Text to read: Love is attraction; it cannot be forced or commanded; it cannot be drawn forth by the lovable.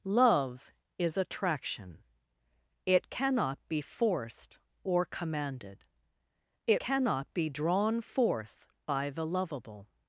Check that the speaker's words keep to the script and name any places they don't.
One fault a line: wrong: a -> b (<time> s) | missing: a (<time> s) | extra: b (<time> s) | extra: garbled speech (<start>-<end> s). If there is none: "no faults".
no faults